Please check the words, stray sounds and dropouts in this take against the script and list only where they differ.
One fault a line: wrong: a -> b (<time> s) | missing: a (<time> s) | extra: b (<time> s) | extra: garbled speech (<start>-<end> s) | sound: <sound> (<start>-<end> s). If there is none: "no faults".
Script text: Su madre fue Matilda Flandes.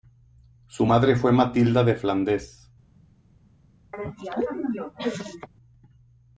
extra: de (1.8 s)
sound: cough (3.9-5.5 s)